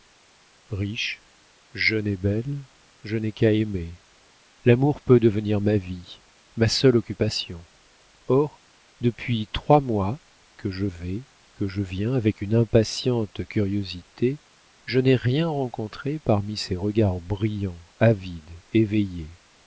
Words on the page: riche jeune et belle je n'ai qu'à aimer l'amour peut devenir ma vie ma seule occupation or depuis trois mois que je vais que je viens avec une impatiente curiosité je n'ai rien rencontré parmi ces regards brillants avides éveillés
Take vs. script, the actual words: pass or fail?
pass